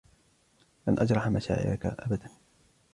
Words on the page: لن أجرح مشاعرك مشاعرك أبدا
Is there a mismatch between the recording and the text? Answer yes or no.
yes